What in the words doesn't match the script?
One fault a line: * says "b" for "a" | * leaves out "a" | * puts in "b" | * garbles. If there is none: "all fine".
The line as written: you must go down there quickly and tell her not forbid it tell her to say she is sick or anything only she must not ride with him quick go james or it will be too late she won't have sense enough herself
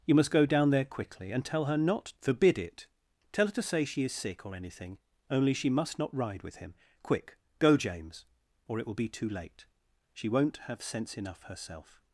all fine